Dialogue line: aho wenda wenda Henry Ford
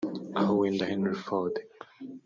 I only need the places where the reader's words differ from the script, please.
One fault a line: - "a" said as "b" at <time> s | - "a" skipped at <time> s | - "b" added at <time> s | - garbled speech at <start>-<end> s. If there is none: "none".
- "wenda" skipped at 0.9 s